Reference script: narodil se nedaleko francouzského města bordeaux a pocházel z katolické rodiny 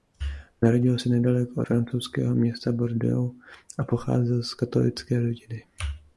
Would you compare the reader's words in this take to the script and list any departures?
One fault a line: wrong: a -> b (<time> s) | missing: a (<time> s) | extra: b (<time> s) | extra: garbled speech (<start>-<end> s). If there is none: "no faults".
no faults